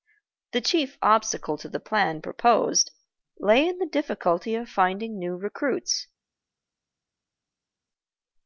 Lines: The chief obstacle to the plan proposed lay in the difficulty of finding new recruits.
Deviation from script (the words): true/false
false